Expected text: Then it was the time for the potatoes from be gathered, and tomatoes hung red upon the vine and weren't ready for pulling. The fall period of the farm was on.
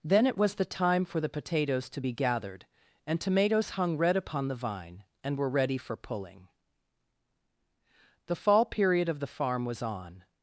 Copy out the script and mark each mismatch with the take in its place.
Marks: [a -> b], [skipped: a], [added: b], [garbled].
Then it was the time for the potatoes [from -> to] be gathered, and tomatoes hung red upon the vine and [weren't -> were] ready for pulling. The fall period of the farm was on.